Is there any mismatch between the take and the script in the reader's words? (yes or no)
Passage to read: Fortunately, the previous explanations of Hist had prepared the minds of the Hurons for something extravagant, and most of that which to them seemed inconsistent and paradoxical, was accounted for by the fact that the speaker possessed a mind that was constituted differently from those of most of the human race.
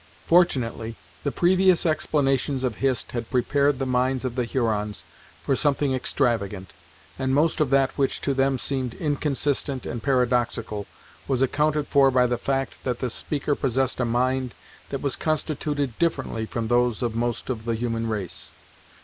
no